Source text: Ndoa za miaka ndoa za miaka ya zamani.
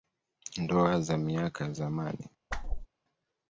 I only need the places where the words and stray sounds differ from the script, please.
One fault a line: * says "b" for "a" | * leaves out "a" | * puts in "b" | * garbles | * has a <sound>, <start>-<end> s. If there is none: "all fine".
* leaves out "ndoa za miaka"
* has a whoosh, 2.5-2.9 s